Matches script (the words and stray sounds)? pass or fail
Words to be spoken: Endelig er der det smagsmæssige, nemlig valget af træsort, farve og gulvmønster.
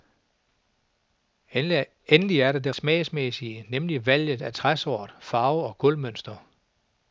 pass